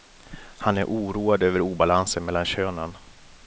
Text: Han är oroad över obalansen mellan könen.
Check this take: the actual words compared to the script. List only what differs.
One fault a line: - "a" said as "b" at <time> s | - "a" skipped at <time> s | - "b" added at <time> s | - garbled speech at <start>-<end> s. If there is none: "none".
none